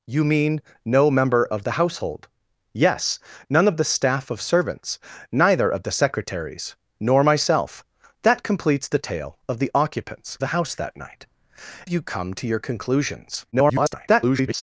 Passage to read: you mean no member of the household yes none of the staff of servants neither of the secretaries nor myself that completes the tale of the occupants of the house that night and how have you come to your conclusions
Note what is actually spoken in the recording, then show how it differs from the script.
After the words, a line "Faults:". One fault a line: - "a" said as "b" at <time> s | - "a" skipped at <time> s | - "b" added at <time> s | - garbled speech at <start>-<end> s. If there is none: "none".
you mean no member of the household yes none of the staff of servants neither of the secretaries nor myself that completes the tale of the occupants the house that night you come to your conclusions [garbled]
Faults:
- "of" skipped at 10.4 s
- "and how have" skipped at 11.3 s
- garbled speech at 13.5-14.6 s